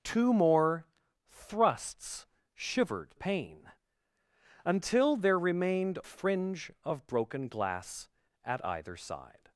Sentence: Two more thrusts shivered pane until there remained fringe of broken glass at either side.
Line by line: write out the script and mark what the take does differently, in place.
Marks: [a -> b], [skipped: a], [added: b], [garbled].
Two more thrusts shivered pane until there remained fringe of broken glass at either side.